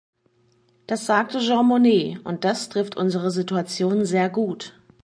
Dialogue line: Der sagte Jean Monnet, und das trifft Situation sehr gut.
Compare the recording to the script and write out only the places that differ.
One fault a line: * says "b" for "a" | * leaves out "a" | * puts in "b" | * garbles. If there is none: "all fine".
* says "Das" for "Der"
* puts in "unsere"